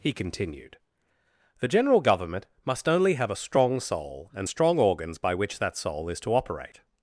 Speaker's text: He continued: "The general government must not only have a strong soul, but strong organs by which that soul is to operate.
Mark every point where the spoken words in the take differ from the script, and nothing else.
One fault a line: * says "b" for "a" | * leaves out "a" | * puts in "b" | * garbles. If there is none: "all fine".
* leaves out "not"
* says "and" for "but"